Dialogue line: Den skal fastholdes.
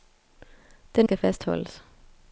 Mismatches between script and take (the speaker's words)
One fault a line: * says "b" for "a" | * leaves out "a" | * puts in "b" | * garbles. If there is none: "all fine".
all fine